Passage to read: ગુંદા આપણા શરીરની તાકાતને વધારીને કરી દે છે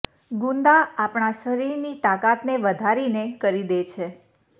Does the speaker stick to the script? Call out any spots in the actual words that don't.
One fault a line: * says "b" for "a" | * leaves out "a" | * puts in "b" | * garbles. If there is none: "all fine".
all fine